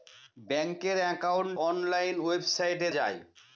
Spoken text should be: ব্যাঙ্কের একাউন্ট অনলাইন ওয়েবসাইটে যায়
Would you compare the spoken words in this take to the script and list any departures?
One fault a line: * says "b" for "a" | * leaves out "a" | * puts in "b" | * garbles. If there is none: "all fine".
all fine